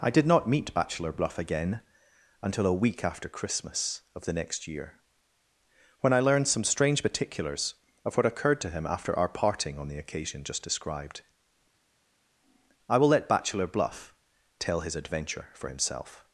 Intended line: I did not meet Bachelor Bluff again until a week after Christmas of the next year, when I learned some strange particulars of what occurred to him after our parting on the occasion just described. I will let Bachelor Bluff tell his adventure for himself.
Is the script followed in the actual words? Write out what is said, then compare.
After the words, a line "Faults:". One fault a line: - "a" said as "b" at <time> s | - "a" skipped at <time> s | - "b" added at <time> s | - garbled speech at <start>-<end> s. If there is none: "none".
I did not meet Bachelor Bluff again until a week after Christmas of the next year, when I learned some strange particulars of what occurred to him after our parting on the occasion just described. I will let Bachelor Bluff tell his adventure for himself.
Faults:
none